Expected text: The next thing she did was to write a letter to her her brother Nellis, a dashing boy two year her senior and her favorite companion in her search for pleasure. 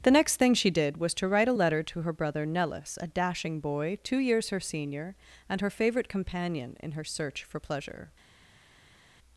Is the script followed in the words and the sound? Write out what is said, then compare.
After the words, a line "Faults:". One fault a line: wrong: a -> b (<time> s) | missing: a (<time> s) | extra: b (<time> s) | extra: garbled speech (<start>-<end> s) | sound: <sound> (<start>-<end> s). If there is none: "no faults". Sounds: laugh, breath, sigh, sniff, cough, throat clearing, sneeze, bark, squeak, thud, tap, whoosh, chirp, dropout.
The next thing she did was to write a letter to her brother Nellis, a dashing boy two years her senior and her favorite companion in her search for pleasure.
Faults:
missing: her (2.1 s)
wrong: year -> years (4.2 s)